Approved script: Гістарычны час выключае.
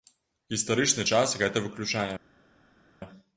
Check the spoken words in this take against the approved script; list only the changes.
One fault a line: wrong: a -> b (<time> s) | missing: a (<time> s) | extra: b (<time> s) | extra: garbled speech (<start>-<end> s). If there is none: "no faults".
extra: гэта (1.4 s)